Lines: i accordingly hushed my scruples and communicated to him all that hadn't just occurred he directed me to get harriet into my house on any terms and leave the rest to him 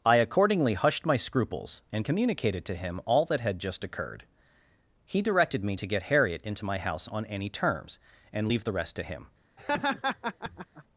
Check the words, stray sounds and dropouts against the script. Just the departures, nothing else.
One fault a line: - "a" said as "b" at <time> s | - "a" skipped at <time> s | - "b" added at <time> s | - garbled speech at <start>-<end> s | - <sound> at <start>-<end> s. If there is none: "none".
- "hadn't" said as "had" at 3.4 s
- laugh at 9.6-10.8 s